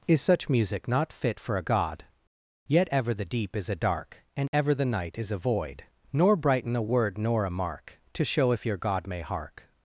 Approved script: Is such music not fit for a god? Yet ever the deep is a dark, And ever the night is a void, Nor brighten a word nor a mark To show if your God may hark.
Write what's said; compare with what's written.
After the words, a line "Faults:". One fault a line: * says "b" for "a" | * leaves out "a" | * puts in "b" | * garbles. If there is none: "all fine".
Is such music not fit for a god? Yet ever the deep is a dark, And ever the night is a void, Nor brighten a word nor a mark To show if your God may hark.
Faults:
all fine